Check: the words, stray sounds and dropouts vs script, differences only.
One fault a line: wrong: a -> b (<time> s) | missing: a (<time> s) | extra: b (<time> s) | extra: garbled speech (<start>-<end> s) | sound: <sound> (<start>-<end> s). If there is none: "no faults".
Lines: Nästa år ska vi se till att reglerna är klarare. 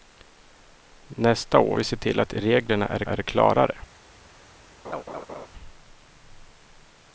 missing: ska (1.8 s)
extra: är (3.0 s)
sound: laugh (4.8-5.5 s)